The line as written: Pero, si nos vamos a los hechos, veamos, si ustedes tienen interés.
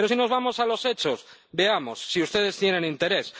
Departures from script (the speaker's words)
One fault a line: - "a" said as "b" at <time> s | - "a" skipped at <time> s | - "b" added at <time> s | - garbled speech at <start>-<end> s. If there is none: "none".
none